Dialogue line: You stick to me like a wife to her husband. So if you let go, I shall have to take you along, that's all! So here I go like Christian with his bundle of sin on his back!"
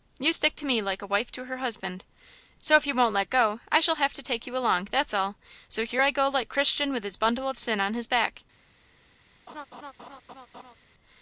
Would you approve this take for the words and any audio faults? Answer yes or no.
no